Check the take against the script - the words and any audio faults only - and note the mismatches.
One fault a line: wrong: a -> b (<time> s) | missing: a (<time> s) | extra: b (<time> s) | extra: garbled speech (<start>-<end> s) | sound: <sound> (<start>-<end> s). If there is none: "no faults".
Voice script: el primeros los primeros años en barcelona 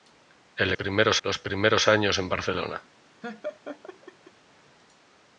sound: laugh (3.2-4.3 s)